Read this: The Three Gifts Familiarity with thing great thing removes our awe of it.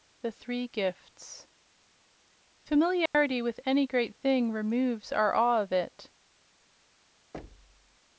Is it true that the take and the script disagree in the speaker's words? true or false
true